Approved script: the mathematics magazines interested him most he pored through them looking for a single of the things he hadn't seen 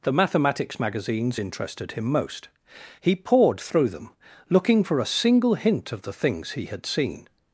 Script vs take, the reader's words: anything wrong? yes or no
yes